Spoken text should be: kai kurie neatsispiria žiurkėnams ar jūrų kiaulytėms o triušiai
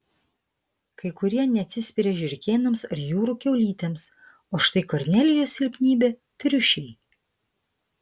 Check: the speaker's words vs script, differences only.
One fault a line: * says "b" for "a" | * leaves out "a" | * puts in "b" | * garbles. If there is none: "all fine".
* puts in "štai kornelijos silpnybė"